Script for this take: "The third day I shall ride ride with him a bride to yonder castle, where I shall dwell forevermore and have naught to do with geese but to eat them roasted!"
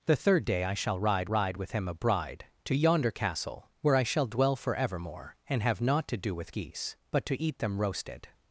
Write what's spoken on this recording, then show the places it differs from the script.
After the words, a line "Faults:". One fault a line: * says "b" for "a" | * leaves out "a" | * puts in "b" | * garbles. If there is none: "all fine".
"The third day I shall ride ride with him a bride to yonder castle, where I shall dwell forevermore and have naught to do with geese but to eat them roasted!"
Faults:
all fine